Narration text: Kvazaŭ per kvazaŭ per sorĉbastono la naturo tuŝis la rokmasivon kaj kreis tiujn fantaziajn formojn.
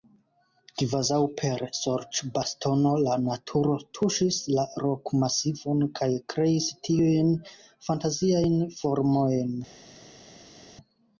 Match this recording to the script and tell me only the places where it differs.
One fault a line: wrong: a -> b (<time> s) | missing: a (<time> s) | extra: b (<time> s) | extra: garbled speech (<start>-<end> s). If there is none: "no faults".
missing: kvazaŭ per (1.6 s)